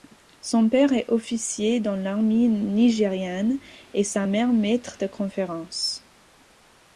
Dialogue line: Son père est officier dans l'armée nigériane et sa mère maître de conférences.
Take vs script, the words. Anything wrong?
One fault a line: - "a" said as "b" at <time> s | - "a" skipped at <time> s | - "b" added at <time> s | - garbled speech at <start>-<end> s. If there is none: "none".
none